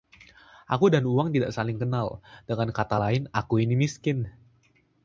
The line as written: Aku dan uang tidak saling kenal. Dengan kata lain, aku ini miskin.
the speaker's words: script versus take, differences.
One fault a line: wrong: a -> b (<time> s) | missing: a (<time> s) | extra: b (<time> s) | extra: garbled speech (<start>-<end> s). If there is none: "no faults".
no faults